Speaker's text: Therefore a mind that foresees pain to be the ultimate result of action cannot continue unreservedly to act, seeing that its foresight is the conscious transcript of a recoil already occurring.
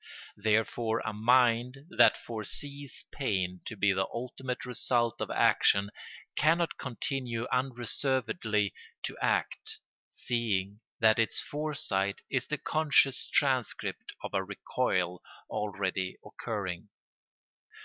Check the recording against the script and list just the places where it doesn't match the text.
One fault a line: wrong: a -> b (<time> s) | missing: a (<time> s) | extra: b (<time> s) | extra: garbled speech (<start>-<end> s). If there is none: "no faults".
no faults